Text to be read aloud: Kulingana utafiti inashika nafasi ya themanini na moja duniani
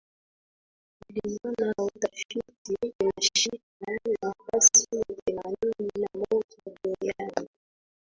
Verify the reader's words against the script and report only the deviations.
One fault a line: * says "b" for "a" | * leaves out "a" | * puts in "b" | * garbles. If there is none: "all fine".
all fine